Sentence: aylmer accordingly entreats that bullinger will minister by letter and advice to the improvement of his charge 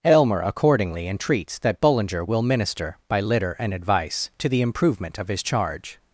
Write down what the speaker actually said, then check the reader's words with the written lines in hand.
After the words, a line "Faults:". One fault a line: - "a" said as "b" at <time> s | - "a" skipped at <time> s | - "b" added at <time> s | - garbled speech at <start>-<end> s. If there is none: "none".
aylmer accordingly entreats that bullinger will minister by litter and advice to the improvement of his charge
Faults:
- "letter" said as "litter" at 3.2 s